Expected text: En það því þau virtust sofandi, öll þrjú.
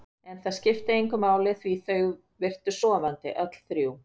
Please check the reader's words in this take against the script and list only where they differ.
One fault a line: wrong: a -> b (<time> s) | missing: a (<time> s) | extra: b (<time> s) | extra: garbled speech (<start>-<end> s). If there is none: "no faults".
extra: skipti engu máli (0.6 s)